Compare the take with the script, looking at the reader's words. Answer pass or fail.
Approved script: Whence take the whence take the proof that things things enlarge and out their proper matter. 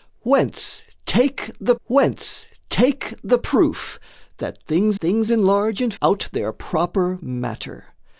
pass